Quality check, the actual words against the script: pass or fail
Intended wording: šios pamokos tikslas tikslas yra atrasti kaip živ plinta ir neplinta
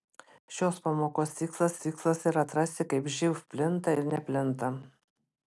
pass